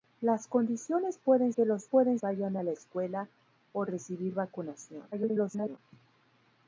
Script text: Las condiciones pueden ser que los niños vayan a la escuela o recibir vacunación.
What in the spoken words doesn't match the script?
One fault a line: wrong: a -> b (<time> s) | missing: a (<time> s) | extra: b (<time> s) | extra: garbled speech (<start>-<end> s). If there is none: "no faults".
missing: ser (1.5 s)
wrong: niños -> pueden (1.9 s)
extra: garbled speech (5.1-5.8 s)